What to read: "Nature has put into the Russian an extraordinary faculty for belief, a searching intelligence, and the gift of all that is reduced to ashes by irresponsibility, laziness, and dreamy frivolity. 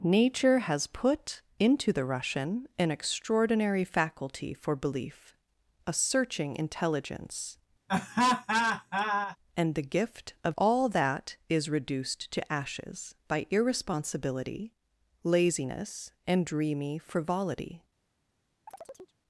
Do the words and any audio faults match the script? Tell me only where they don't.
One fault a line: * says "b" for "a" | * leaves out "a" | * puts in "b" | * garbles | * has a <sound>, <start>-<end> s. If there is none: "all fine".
* has a laugh, 7.9-9.4 s
* has a chirp, 18.7-19.2 s